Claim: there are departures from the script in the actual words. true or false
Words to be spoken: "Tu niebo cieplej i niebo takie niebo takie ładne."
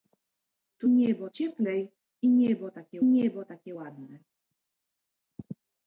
false